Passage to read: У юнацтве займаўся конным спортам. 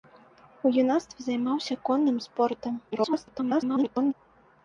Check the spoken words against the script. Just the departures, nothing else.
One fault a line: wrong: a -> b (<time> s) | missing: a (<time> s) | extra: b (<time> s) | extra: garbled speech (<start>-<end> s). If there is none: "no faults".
extra: garbled speech (2.9-4.1 s)